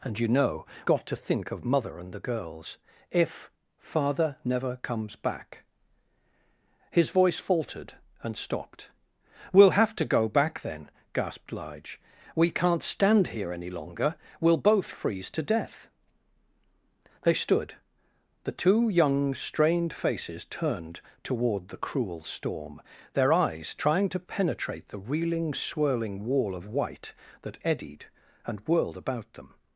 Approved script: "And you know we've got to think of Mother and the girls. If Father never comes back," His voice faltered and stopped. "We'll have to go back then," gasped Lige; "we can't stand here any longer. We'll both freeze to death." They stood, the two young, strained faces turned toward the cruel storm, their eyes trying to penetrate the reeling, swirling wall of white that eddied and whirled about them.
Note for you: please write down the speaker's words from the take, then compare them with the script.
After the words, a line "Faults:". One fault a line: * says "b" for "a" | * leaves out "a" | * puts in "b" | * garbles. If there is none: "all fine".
"And you know got to think of Mother and the girls. If Father never comes back," His voice faltered and stopped. "We'll have to go back then," gasped Lige; "we can't stand here any longer. We'll both freeze to death." They stood, the two young, strained faces turned toward the cruel storm, their eyes trying to penetrate the reeling, swirling wall of white that eddied and whirled about them.
Faults:
* leaves out "we've"